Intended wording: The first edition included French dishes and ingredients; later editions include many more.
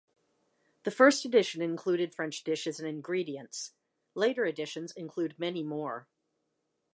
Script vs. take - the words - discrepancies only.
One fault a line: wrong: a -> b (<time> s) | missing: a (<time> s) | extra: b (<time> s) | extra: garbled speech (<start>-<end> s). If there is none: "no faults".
no faults